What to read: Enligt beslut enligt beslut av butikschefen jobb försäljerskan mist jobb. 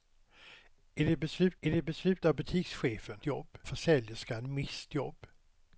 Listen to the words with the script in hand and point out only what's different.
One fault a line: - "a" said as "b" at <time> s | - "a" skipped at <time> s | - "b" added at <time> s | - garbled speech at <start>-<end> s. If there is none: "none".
none